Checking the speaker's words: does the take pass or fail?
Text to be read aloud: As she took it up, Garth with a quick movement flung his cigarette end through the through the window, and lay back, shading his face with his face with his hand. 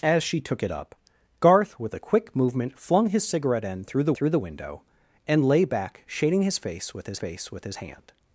pass